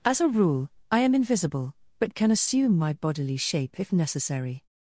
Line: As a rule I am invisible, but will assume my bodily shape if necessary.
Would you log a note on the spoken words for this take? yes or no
yes